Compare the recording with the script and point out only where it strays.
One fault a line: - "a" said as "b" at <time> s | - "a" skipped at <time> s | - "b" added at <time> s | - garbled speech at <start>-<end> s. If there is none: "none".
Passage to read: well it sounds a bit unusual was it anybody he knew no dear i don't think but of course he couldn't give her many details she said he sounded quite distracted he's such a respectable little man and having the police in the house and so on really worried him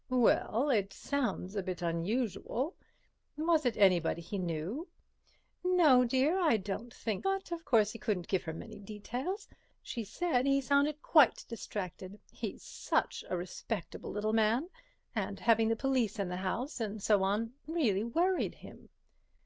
none